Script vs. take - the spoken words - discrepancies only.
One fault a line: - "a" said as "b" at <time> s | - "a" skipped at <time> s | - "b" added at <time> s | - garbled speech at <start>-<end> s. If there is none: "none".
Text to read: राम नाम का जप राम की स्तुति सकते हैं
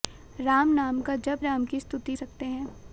none